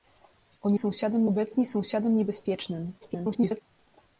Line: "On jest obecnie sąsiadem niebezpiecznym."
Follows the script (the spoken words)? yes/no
no